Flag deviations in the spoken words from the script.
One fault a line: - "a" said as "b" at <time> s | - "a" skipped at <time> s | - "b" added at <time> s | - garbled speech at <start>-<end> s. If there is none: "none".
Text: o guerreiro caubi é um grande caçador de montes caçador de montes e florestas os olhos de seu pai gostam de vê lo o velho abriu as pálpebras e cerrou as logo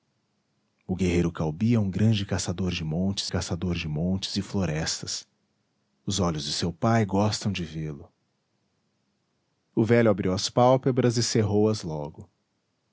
none